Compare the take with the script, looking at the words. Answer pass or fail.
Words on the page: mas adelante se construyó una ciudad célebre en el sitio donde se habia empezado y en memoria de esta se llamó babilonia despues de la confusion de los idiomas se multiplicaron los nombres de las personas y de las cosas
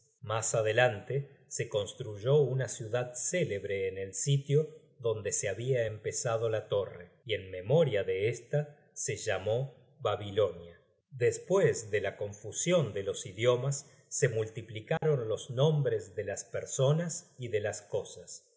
fail